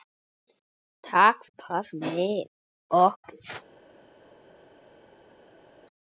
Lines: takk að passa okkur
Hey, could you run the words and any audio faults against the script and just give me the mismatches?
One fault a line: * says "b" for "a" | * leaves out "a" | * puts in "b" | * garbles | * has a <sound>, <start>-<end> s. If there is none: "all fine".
all fine